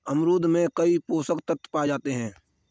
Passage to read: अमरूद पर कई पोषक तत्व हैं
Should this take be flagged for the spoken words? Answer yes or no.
yes